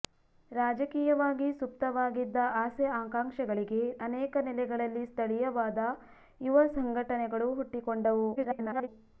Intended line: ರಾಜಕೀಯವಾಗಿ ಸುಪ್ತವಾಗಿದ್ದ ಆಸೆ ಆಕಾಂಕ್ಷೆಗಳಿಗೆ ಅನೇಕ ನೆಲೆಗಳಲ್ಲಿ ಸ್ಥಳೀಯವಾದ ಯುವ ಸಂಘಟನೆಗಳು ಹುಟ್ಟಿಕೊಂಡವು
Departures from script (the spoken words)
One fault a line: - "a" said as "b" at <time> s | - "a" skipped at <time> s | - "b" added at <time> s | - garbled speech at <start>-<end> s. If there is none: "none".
- garbled speech at 8.3-8.9 s